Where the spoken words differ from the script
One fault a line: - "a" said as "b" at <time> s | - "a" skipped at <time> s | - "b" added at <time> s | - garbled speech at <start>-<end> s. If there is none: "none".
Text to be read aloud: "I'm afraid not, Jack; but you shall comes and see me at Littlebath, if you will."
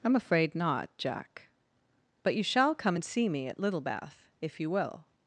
- "comes" said as "come" at 2.7 s